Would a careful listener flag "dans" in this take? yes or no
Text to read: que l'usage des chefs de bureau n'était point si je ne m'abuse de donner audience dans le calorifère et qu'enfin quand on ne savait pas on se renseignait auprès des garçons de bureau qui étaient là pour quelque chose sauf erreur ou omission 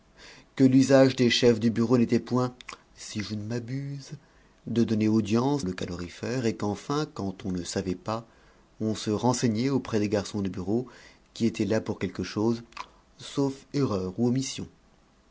yes